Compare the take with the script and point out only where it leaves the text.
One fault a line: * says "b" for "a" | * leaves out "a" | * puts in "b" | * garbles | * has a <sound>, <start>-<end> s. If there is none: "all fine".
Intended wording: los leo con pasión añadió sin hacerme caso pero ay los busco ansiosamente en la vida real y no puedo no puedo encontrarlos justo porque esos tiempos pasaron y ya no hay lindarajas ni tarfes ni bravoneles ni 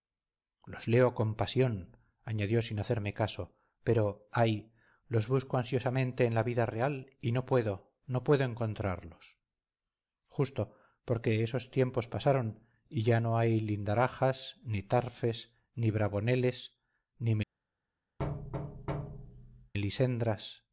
* has a thud, 18.2-19.7 s